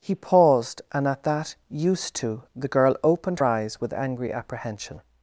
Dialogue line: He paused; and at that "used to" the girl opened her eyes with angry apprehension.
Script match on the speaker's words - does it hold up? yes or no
no